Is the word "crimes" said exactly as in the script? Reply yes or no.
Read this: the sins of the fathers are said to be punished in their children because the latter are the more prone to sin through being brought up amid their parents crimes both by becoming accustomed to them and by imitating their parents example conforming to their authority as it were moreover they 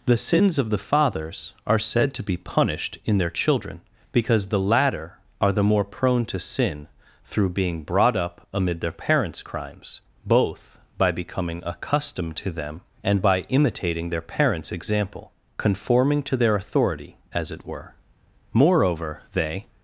yes